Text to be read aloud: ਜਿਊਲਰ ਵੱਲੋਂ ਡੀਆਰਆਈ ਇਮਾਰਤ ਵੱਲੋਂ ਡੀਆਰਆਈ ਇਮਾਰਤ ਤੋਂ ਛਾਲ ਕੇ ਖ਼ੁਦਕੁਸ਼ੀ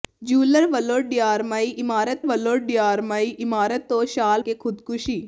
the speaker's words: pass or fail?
pass